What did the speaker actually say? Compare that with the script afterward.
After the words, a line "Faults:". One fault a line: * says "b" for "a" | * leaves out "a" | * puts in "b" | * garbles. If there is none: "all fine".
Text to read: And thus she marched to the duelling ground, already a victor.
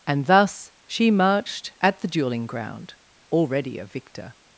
And thus she marched at the duelling ground, already a victor.
Faults:
* says "at" for "to"